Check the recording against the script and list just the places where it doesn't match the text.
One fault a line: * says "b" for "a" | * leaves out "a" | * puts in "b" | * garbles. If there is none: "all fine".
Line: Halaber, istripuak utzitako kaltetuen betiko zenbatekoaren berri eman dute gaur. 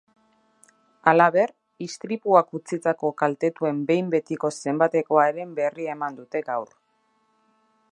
* puts in "behin"